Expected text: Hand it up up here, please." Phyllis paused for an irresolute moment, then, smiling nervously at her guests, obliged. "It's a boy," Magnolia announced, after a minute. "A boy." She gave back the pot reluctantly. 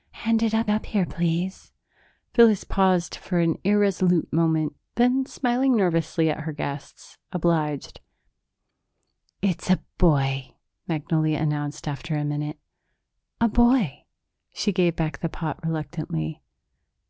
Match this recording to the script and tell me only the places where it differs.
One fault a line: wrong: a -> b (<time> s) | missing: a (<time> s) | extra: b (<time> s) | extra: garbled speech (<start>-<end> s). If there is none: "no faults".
no faults